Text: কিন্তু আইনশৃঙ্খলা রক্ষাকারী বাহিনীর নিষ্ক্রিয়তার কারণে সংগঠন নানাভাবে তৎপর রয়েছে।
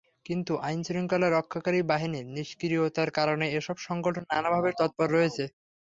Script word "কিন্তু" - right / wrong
right